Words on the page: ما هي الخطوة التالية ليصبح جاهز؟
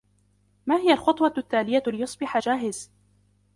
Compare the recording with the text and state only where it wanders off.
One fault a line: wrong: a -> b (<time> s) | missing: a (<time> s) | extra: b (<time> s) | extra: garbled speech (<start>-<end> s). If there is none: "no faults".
no faults